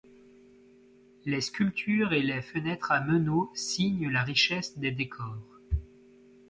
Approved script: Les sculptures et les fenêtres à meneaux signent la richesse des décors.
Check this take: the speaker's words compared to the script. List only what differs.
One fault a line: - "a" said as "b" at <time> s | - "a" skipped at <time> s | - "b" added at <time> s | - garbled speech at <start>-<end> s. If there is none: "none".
none